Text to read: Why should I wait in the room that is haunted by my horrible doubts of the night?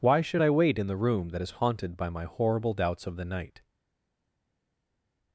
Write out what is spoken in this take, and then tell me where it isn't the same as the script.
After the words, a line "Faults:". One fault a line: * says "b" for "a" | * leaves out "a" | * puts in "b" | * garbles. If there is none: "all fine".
Why should I wait in the room that is haunted by my horrible doubts of the night?
Faults:
all fine